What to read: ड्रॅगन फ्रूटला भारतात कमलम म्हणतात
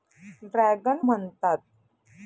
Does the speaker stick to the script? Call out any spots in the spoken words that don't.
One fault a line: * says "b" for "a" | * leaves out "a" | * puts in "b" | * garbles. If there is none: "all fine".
* leaves out "फ्रूटला भारतात कमलम"